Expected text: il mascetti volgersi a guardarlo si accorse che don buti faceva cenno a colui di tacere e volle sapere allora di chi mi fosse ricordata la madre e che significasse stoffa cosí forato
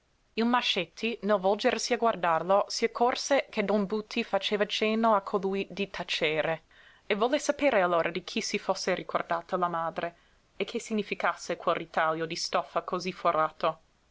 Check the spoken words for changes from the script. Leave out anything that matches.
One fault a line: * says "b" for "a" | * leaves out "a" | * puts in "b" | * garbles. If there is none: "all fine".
* puts in "nel"
* says "si" for "mi"
* puts in "quel ritaglio di"